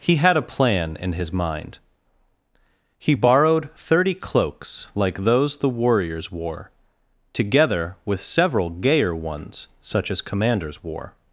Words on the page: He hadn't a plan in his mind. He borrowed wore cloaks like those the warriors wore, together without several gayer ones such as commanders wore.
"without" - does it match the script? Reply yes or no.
no